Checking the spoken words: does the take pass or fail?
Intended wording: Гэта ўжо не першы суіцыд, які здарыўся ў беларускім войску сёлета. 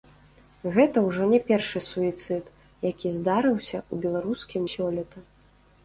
fail